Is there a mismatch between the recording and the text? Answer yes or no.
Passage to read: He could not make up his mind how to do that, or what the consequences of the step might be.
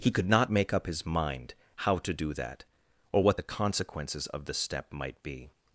no